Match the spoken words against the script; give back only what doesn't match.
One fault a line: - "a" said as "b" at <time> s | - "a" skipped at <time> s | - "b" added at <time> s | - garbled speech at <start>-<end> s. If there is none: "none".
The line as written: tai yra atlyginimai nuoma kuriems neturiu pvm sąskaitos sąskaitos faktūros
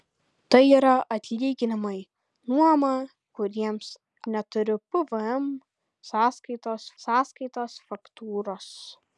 none